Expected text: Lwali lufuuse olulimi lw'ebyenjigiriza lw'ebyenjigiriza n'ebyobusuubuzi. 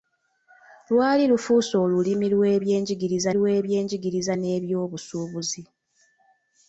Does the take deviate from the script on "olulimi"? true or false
false